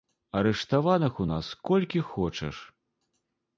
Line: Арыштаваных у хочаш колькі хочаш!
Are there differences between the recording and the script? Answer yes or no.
yes